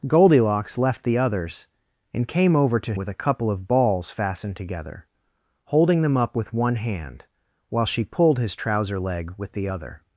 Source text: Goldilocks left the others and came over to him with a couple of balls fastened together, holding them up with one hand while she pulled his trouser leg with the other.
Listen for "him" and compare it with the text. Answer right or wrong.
wrong